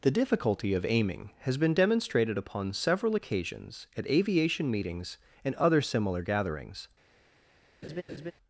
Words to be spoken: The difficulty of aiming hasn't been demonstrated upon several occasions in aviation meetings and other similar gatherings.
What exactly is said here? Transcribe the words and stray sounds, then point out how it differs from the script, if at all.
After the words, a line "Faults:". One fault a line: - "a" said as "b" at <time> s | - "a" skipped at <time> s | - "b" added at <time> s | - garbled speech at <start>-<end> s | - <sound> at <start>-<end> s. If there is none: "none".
The difficulty of aiming has been demonstrated upon several occasions at aviation meetings and other similar gatherings.
Faults:
- "hasn't" said as "has" at 1.4 s
- "in" said as "at" at 4.0 s
- laugh at 7.8-8.3 s